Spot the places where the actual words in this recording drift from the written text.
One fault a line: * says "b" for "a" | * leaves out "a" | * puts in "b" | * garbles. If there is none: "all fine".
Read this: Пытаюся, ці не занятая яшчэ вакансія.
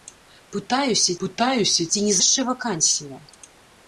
* puts in "пытаюся"
* leaves out "занятая"